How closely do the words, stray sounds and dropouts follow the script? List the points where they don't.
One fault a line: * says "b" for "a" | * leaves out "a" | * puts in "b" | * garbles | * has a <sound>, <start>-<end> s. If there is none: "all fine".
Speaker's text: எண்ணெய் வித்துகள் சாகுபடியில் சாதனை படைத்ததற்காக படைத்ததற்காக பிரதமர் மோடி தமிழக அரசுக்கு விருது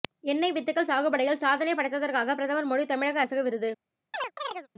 * leaves out "படைத்ததற்காக"
* has a chirp, 4.1-4.7 s